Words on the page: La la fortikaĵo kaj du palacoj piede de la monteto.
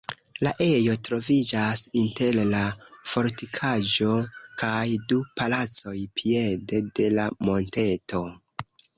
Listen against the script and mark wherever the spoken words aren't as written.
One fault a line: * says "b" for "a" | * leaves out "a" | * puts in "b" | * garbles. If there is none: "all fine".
* puts in "ejo troviĝas inter"